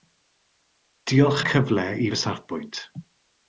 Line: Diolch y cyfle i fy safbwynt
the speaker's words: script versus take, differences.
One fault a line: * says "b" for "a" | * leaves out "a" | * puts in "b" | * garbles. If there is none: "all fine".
all fine